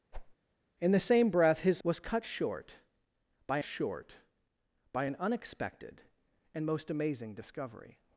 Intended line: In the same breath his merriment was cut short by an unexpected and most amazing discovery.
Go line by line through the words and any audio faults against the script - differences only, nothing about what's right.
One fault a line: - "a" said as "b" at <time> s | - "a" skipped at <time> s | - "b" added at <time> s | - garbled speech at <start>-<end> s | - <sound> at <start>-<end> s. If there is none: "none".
- whoosh at 0.1-0.4 s
- "merriment" skipped at 1.8 s
- "short by" added at 3.6 s